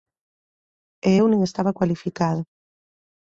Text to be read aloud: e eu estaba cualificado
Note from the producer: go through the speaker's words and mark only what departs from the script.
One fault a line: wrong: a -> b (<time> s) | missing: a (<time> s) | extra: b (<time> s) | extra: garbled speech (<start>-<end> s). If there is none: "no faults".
extra: nin (1.3 s)